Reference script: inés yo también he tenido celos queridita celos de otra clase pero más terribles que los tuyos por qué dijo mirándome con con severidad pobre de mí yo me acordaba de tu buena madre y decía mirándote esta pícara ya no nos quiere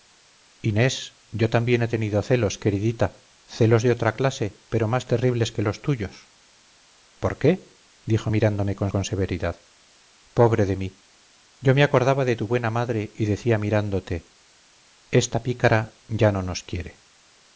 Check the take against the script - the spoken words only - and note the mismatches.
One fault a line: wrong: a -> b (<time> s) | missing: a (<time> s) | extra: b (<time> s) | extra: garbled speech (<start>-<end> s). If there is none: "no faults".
no faults